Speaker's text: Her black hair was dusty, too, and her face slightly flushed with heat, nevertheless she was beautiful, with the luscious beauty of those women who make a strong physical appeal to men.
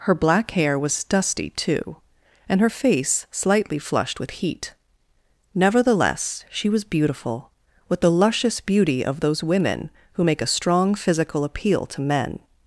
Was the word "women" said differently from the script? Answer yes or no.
no